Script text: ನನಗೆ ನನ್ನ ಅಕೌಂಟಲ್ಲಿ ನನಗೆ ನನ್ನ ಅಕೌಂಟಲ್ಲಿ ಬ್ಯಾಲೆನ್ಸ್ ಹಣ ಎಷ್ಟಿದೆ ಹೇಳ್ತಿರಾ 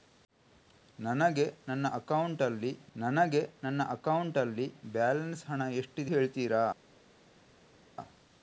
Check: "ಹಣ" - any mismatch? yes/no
no